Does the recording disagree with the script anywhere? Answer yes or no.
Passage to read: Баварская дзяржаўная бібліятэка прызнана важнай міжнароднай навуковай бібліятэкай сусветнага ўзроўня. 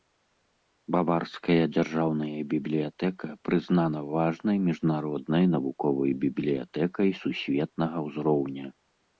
no